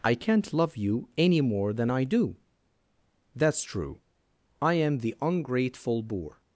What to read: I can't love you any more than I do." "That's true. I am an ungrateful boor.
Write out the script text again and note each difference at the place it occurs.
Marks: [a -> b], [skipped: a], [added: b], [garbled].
I can't love you any more than I do." "That's true. I am [an -> the] ungrateful boor.